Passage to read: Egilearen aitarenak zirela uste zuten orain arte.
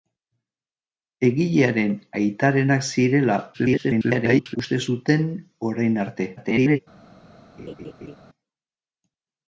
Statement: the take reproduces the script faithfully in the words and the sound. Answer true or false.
false